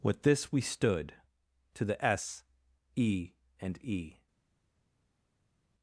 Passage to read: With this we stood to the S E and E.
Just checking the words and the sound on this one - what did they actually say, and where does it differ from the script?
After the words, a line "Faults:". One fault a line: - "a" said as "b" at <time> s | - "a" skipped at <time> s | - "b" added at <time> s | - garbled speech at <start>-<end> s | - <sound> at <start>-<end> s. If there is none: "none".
With this we stood to the S E and E.
Faults:
none